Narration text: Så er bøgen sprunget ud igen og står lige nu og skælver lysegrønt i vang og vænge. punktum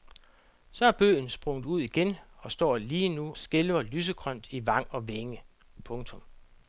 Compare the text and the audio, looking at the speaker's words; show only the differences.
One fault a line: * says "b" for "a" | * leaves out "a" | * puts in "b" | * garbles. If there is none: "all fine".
* leaves out "og"